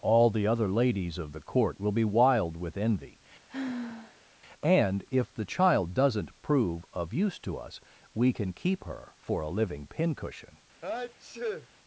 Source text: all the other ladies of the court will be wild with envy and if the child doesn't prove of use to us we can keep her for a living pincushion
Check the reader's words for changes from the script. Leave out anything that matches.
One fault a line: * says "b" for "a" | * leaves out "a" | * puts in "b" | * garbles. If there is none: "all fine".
all fine